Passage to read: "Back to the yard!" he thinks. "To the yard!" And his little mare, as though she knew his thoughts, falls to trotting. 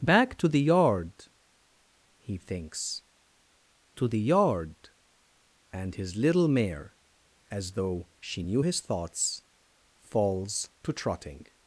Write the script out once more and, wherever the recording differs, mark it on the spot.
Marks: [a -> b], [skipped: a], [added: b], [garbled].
"Back to the yard!" he thinks. "To the yard!" And his little mare, as though she knew his thoughts, falls to trotting.